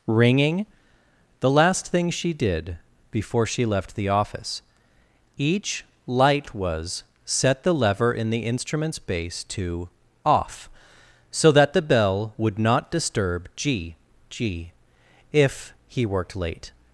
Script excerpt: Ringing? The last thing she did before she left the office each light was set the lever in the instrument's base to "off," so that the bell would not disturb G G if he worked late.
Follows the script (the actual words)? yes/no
yes